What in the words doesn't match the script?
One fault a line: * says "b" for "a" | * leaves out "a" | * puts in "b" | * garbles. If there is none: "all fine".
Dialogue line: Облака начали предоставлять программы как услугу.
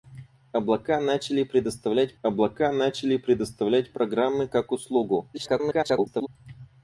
* puts in "облака начали предоставлять"
* garbles